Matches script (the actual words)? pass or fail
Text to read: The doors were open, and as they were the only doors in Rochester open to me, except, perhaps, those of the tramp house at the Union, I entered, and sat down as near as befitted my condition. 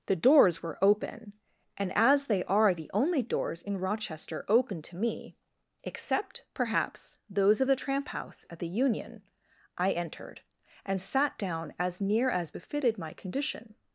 fail